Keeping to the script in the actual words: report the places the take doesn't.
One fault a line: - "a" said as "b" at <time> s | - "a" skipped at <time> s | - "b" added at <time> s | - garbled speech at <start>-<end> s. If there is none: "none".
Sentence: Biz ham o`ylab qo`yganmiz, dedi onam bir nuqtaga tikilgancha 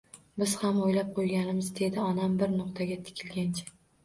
none